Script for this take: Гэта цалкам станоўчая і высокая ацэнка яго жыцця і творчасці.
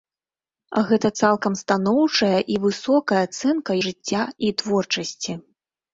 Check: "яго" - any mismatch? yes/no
yes